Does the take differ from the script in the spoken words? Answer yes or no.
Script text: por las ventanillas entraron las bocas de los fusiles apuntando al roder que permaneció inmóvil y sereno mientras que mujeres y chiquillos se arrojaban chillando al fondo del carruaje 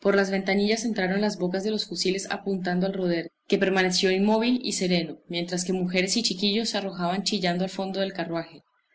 no